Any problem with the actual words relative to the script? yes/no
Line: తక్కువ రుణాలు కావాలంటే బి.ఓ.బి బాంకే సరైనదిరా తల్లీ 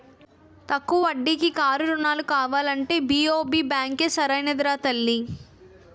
yes